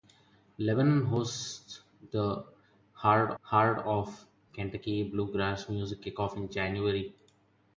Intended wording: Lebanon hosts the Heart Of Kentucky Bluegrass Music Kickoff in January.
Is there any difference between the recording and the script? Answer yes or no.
yes